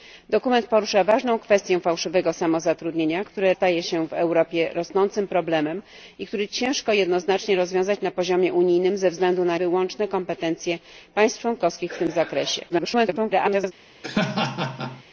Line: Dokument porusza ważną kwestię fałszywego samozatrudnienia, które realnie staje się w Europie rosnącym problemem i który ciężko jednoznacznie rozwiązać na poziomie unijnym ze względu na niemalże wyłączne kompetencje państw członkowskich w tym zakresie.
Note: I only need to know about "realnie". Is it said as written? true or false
false